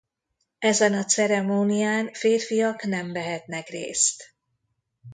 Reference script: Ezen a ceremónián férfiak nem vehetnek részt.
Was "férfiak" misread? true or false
false